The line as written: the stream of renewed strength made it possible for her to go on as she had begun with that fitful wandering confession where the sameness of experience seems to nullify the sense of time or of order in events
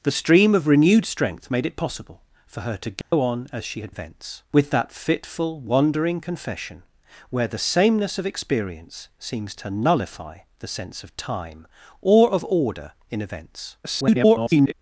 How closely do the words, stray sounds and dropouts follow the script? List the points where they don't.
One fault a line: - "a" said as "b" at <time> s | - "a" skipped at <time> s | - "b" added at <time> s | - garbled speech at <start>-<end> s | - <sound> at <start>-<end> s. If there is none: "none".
- dropout at 3.0-3.1 s
- "begun" said as "events" at 3.9 s
- garbled speech at 13.8-14.7 s